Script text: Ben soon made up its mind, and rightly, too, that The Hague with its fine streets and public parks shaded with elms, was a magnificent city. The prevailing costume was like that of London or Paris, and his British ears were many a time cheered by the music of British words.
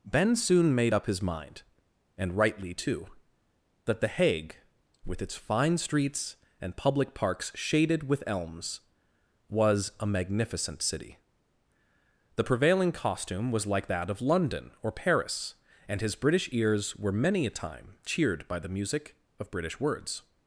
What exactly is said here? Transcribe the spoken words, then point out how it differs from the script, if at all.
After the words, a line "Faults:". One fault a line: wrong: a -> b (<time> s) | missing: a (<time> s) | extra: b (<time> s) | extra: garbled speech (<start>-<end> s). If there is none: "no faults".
Ben soon made up his mind, and rightly, too, that The Hague with its fine streets and public parks shaded with elms, was a magnificent city. The prevailing costume was like that of London or Paris, and his British ears were many a time cheered by the music of British words.
Faults:
wrong: its -> his (1.1 s)